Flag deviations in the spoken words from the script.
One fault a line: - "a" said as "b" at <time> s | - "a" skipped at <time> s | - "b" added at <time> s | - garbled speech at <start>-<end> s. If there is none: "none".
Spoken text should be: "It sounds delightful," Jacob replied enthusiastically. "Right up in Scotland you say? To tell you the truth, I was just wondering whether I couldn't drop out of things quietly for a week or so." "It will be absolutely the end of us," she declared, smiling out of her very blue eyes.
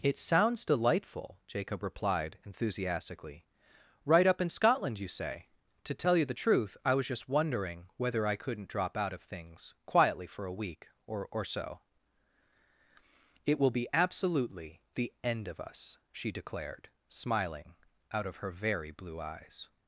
- "or" added at 11.3 s